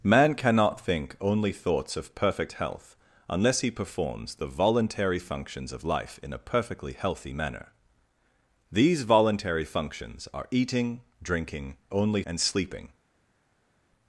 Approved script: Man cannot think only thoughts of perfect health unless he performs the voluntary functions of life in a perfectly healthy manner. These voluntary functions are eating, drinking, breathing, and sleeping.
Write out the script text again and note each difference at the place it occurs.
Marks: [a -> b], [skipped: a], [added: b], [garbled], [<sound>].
Man cannot think only thoughts of perfect health unless he performs the voluntary functions of life in a perfectly healthy manner. These voluntary functions are eating, drinking, [breathing, -> only] and sleeping.